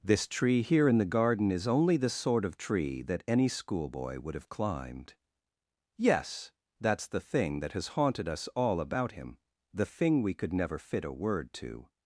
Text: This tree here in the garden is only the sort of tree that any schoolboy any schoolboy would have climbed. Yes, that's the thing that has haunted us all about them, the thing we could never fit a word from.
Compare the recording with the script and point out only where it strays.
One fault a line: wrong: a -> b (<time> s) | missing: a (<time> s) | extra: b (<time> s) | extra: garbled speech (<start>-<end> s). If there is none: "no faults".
missing: any schoolboy (4.2 s)
wrong: them -> him (9.1 s)
wrong: from -> to (11.5 s)